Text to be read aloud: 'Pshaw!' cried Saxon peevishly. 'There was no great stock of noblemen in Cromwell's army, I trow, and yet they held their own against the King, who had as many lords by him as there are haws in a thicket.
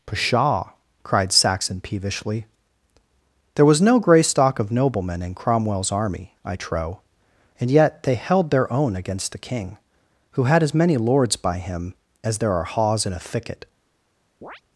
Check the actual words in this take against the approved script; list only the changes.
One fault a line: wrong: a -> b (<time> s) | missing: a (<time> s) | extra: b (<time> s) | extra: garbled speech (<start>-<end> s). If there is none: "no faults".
wrong: great -> grey (4.0 s)